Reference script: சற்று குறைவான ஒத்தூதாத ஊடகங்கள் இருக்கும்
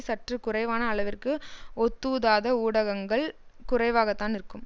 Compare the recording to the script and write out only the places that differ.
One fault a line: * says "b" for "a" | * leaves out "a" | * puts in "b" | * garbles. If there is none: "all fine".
* puts in "அளவிற்கு"
* puts in "குறைவாகத்தான்"